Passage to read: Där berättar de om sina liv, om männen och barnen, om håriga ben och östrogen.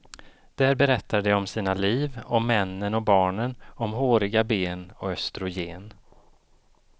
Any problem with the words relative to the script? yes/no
no